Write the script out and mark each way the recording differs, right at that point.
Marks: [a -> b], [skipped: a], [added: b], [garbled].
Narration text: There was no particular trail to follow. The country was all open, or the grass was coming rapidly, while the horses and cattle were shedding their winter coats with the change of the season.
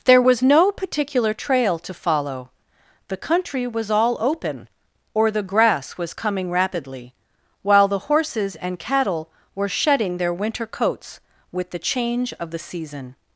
There was no particular trail to follow. The country was all open, or the grass was coming rapidly, while the horses and cattle were shedding their winter coats with the change of the season.